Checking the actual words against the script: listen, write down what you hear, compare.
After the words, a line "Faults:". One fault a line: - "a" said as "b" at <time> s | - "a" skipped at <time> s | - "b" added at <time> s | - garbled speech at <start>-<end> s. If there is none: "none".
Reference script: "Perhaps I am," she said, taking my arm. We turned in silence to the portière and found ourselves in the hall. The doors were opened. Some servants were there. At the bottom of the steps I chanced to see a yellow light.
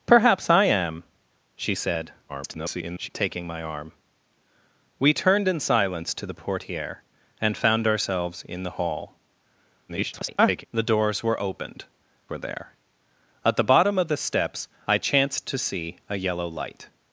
"Perhaps I am," she said, [garbled] taking my arm. We turned in silence to the portière and found ourselves in the hall. [garbled] The doors were opened. Were there. At the bottom of the steps I chanced to see a yellow light.
Faults:
- garbled speech at 2.3-3.1 s
- garbled speech at 9.9-10.6 s
- "Some servants" skipped at 11.8 s